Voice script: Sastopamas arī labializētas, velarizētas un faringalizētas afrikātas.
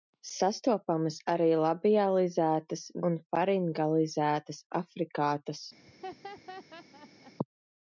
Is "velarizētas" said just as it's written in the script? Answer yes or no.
no